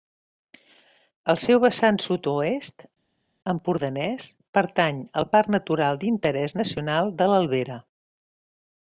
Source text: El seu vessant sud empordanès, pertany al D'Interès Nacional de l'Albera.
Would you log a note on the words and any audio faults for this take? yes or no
yes